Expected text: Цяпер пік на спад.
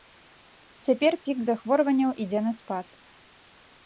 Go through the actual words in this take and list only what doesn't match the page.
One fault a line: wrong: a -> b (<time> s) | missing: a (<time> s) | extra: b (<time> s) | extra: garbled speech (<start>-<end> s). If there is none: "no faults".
extra: захворванняў ідзе (1.5 s)